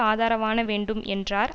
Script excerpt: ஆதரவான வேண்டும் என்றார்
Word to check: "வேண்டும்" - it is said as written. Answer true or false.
true